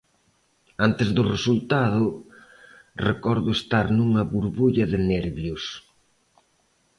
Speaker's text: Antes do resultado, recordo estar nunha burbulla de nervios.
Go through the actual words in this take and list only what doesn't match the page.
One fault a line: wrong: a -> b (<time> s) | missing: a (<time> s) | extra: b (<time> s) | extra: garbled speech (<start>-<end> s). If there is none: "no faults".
no faults